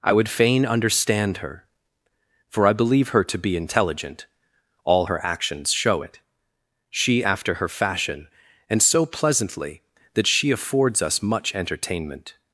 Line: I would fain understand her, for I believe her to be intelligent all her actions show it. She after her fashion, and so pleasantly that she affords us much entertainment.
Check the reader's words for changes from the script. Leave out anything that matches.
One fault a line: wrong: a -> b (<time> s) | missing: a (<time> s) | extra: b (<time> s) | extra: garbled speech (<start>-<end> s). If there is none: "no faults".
no faults